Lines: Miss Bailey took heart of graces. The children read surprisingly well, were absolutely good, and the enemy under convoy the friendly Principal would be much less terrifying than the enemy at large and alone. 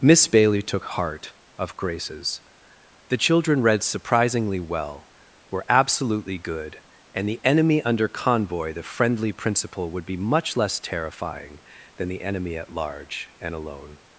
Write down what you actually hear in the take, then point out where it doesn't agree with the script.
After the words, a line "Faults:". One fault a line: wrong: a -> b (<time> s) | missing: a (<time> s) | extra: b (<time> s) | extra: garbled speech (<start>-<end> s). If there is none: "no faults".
Miss Bailey took heart of graces. The children read surprisingly well, were absolutely good, and the enemy under convoy the friendly Principal would be much less terrifying than the enemy at large and alone.
Faults:
no faults